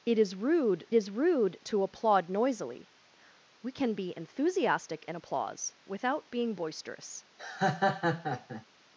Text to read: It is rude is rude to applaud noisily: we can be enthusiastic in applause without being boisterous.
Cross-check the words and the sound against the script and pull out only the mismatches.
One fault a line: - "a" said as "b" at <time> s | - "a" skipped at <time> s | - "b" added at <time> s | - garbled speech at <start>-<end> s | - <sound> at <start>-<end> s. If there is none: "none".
- laugh at 7.4-8.7 s